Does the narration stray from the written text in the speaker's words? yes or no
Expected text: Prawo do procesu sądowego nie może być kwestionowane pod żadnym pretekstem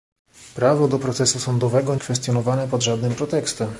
yes